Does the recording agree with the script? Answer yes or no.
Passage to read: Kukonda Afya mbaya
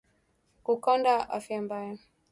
yes